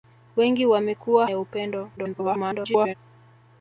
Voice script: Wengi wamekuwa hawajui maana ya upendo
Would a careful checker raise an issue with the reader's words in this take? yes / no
yes